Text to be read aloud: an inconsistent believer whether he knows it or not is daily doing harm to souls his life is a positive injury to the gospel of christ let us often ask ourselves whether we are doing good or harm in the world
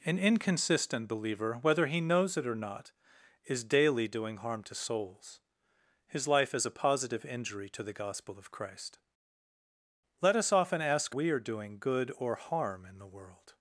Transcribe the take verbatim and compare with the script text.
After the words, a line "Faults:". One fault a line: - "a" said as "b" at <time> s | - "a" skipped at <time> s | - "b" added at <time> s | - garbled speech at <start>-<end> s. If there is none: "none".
an inconsistent believer whether he knows it or not is daily doing harm to souls his life is a positive injury to the gospel of christ let us often ask we are doing good or harm in the world
Faults:
- "ourselves whether" skipped at 11.2 s